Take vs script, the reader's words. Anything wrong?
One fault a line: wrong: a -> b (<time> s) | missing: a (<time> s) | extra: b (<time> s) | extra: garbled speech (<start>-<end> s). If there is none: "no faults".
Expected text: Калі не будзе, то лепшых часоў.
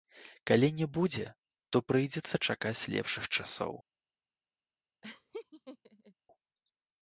extra: прыйдзецца чакаць (1.9 s)